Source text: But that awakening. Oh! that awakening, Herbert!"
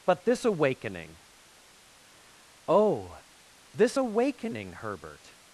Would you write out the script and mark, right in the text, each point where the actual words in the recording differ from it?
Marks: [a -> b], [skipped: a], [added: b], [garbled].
But [that -> this] awakening. Oh! [that -> this] awakening, Herbert!"